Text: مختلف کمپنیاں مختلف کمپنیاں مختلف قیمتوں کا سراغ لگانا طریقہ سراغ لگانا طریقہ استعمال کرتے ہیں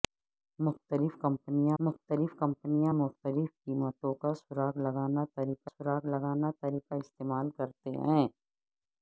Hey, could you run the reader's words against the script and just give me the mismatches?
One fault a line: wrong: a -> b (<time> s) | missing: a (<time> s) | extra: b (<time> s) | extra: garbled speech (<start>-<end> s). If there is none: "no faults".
no faults